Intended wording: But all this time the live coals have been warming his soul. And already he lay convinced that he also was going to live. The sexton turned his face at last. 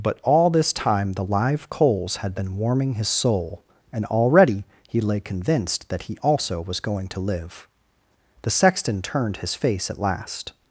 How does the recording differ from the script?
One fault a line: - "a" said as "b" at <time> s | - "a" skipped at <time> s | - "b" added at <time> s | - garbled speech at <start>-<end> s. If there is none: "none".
- "have" said as "had" at 2.2 s